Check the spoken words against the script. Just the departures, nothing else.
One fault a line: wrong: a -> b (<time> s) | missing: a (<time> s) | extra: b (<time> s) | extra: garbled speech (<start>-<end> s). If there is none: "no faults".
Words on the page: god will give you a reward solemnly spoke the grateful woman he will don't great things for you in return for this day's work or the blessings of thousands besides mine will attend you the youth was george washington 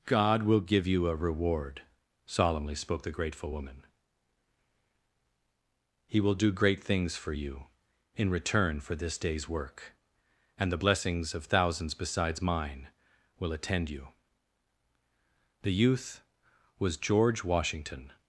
wrong: don't -> do (6.3 s)
wrong: or -> and (10.6 s)